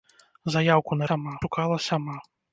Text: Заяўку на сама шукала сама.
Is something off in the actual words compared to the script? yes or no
no